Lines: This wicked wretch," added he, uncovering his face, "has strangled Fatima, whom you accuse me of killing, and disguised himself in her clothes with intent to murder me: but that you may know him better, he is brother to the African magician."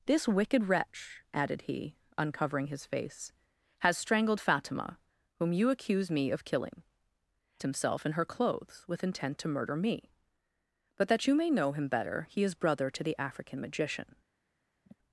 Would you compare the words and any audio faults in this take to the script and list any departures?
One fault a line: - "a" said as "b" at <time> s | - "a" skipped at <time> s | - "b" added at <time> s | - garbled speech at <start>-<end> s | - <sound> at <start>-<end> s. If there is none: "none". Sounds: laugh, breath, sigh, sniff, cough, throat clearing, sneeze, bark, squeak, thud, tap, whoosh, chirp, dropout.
- "and disguised" skipped at 6.8 s
- sigh at 14.8-15.0 s